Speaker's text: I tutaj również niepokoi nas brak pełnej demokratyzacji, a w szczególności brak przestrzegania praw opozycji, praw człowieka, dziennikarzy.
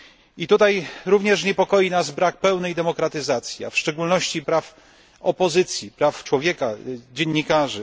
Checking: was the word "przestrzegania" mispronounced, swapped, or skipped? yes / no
yes